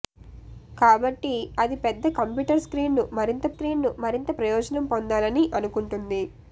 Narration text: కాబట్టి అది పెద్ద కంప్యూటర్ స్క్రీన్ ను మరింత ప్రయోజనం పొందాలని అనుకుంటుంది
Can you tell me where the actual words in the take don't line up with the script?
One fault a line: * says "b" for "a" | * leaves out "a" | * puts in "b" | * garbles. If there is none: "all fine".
* puts in "స్క్రీన్ ను మరింత"